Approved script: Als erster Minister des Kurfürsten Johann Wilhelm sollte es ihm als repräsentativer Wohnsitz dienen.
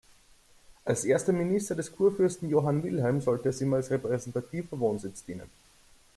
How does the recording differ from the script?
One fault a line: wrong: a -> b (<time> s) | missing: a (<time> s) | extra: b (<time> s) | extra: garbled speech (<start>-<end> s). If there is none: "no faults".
no faults